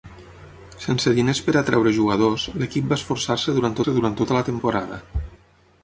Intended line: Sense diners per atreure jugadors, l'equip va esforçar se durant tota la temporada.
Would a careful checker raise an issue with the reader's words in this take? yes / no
yes